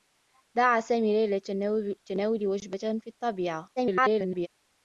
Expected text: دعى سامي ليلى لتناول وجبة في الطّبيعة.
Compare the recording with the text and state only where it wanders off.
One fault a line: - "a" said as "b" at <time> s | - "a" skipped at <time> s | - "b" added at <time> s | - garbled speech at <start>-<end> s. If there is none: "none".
- garbled speech at 3.8-4.5 s